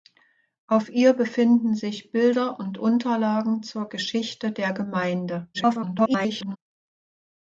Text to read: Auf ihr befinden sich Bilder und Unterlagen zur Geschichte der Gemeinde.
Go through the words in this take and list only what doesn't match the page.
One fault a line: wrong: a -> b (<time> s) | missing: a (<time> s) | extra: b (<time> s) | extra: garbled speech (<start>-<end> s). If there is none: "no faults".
extra: garbled speech (5.5-6.6 s)